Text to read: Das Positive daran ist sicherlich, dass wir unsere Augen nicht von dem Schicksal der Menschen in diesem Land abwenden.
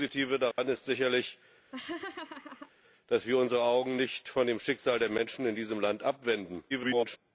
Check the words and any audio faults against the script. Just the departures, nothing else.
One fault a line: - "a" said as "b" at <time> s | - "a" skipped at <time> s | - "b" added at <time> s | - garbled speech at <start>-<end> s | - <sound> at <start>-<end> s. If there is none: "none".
- dropout at 0.5-0.6 s
- laugh at 1.7-2.7 s
- garbled speech at 6.7-7.2 s